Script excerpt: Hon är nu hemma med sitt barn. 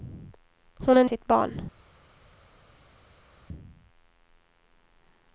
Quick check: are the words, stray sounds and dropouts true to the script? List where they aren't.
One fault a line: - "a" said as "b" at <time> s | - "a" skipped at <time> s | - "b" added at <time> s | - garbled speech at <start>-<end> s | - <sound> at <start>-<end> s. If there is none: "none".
- "nu hemma med" skipped at 1.0 s